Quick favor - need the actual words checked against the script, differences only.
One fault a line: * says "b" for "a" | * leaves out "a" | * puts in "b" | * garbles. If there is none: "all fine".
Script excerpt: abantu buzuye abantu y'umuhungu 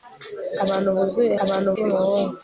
all fine